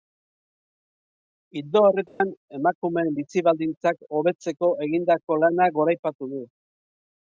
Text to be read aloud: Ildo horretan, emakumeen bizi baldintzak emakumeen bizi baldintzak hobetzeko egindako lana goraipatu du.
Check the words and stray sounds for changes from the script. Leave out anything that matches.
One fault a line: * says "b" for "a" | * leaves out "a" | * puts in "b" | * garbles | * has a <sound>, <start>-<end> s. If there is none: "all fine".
* has a dropout, 2.1-2.2 s
* leaves out "emakumeen bizi baldintzak"